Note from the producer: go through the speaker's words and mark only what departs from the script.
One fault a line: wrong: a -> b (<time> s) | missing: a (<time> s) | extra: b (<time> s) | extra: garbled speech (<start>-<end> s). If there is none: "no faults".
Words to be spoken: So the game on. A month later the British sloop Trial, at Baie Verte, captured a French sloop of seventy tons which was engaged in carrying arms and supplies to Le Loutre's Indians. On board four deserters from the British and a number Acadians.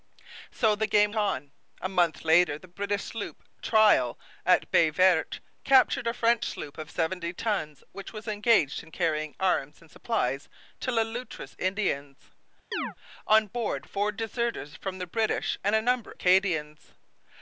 no faults